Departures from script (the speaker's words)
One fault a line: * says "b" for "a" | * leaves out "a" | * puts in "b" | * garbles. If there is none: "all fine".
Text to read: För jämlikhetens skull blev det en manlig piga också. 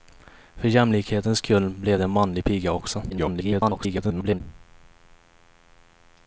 * garbles